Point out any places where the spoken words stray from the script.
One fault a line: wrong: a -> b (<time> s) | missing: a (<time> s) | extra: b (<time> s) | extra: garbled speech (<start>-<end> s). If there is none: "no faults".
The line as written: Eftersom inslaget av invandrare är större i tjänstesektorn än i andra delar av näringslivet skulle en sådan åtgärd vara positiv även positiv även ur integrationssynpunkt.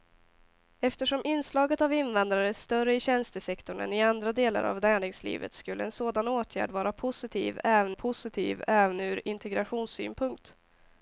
no faults